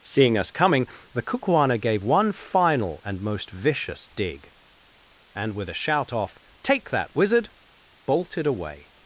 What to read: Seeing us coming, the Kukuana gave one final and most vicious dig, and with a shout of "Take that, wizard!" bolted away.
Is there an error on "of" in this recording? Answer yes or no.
yes